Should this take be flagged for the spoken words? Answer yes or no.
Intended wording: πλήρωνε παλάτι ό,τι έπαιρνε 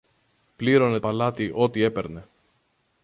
no